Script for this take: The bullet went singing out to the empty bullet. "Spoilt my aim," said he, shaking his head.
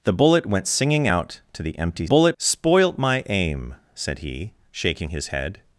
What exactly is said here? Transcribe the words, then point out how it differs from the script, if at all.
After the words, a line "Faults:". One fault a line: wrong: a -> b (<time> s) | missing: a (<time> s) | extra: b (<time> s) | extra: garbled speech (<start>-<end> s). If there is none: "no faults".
The bullet went singing out to the empty bullet. "Spoilt my aim," said he, shaking his head.
Faults:
no faults